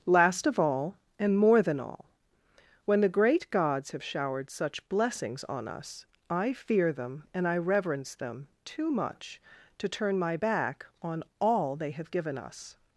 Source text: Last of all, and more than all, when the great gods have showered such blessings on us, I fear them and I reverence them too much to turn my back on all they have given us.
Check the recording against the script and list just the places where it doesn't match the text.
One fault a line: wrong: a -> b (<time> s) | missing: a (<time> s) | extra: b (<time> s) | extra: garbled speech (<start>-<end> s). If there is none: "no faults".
no faults